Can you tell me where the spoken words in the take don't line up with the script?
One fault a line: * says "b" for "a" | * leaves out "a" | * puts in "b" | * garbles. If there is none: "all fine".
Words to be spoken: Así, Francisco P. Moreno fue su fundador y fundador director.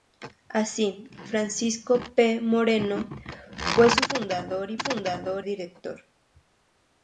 all fine